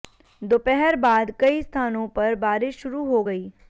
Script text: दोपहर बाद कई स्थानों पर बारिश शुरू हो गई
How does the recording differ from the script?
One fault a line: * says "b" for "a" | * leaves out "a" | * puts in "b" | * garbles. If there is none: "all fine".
all fine